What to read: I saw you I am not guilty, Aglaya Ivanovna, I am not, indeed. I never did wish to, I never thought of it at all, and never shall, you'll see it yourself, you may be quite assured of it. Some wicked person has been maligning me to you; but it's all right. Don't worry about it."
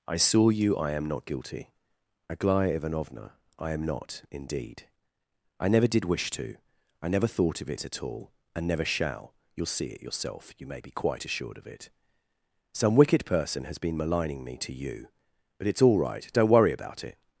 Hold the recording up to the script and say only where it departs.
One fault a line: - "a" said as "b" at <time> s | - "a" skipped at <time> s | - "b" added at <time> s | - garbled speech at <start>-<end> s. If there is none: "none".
none